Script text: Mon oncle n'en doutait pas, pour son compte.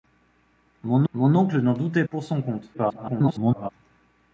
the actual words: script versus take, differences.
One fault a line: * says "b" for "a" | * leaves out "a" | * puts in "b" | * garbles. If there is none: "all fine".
* puts in "mon"
* leaves out "pas"
* garbles